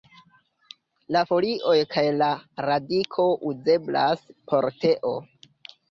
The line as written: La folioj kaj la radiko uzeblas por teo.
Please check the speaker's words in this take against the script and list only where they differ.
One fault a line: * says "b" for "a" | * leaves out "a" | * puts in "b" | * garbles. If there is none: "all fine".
all fine